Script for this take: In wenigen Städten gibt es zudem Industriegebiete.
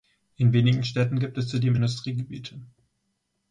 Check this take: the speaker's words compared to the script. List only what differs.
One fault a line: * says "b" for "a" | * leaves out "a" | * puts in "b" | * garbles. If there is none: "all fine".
all fine